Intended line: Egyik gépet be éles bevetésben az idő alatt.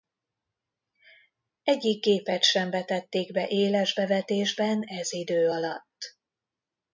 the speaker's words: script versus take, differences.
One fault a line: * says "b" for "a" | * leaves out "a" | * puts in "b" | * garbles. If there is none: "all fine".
* puts in "sem vetették"
* says "ez" for "az"